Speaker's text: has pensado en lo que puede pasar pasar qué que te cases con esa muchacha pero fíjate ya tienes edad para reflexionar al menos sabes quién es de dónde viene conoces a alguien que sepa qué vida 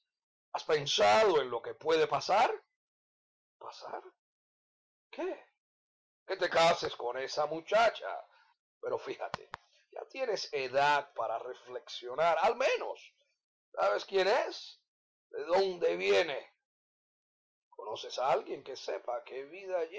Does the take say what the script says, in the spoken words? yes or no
yes